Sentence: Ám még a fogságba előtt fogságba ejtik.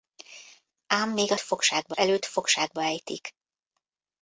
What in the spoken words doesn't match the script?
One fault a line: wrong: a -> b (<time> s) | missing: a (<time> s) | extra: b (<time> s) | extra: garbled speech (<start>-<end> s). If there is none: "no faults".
no faults